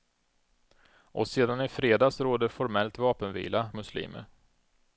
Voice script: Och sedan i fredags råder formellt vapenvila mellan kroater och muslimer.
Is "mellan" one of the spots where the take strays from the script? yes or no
yes